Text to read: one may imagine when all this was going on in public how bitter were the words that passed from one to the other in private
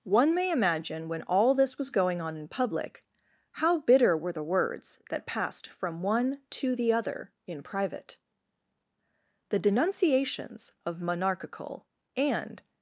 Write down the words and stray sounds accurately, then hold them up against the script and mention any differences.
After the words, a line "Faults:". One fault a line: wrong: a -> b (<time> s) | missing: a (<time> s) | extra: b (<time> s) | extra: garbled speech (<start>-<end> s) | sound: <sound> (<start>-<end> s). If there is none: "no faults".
one may imagine when all this was going on in public how bitter were the words that passed from one to the other in private the denunciations of monarchical and
Faults:
extra: the denunciations of monarchical and (9.5 s)